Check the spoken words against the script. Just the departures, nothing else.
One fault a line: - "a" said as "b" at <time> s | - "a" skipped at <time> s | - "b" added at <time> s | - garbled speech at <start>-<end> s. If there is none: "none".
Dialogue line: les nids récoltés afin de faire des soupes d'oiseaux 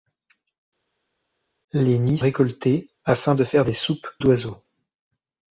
none